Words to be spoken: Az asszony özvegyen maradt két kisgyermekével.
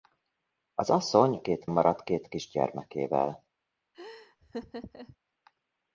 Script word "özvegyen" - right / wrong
wrong